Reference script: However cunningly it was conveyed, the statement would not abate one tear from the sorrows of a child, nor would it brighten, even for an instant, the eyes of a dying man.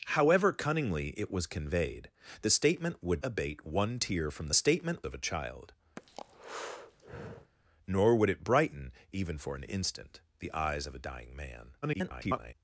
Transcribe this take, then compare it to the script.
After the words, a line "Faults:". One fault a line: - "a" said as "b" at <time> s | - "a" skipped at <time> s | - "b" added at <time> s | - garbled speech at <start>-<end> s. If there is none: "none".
However cunningly it was conveyed, the statement would abate one tear from the statement of a child, nor would it brighten, even for an instant, the eyes of a dying man. [garbled]
Faults:
- "not" skipped at 3.2 s
- "sorrows" said as "statement" at 4.5 s
- garbled speech at 11.8-12.5 s